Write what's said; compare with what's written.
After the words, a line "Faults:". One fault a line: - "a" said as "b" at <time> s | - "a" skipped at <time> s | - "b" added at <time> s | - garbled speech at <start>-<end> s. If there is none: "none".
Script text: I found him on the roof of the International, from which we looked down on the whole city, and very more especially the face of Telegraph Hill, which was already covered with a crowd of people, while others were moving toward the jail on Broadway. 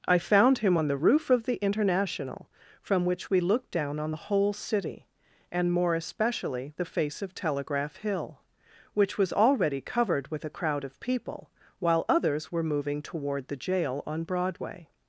I found him on the roof of the International, from which we looked down on the whole city, and more especially the face of Telegraph Hill, which was already covered with a crowd of people, while others were moving toward the jail on Broadway.
Faults:
- "very" skipped at 5.7 s